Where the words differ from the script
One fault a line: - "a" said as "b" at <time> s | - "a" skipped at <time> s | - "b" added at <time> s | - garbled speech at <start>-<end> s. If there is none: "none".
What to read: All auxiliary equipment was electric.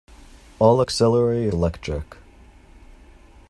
- "equipment was" skipped at 1.5 s